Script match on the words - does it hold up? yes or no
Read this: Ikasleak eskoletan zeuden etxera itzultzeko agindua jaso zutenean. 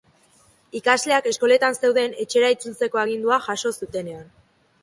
yes